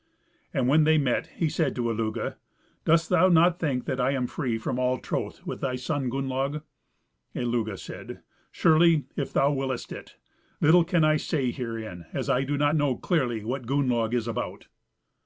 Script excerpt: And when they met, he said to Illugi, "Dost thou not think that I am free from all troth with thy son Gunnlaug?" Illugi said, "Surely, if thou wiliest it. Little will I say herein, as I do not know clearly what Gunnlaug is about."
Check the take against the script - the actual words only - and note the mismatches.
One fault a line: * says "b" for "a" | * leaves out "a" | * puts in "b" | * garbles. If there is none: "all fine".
* says "can" for "will"